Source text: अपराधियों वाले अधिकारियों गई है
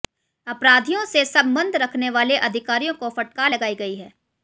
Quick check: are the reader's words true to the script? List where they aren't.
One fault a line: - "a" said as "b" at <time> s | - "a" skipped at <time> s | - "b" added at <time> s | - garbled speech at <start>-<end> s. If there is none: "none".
- "से संबंध रखने" added at 1.1 s
- "को फटकार लगाई" added at 2.9 s